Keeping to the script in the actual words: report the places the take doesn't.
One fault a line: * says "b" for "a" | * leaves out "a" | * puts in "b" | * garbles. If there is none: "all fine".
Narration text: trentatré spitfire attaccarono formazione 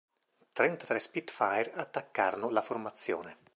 * puts in "la"